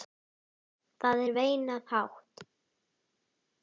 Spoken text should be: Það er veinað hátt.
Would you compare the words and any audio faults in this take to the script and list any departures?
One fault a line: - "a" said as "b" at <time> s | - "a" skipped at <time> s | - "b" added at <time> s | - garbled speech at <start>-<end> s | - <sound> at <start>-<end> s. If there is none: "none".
none